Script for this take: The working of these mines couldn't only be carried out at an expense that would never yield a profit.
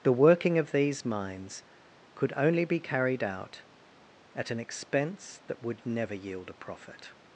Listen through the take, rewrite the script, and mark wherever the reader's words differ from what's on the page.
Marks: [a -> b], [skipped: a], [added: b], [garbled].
The working of these mines [couldn't -> could] only be carried out at an expense that would never yield a profit.